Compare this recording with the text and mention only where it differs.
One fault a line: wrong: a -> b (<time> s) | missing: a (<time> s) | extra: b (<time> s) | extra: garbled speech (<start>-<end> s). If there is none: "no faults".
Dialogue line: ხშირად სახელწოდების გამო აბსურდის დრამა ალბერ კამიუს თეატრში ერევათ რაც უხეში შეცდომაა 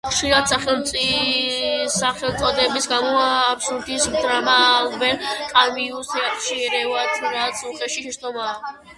no faults